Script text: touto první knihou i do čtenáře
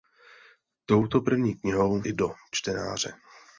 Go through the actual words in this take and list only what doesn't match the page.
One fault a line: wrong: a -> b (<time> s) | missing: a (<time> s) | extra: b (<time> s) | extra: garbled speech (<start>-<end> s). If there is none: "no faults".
no faults